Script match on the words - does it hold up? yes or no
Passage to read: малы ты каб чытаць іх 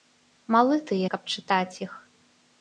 yes